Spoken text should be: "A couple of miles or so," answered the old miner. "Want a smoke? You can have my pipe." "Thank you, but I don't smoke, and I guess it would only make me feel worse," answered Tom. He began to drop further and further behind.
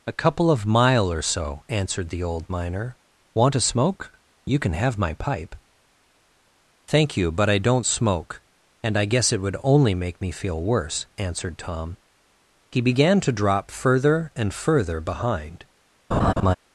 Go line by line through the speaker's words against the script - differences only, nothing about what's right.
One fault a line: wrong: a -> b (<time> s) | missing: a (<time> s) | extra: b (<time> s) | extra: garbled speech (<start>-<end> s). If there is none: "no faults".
wrong: miles -> mile (0.7 s)